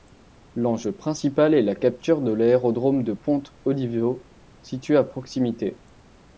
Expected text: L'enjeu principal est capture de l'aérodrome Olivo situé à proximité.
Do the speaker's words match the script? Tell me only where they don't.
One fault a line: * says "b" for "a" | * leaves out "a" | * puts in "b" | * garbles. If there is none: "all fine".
* puts in "la"
* puts in "de Ponte"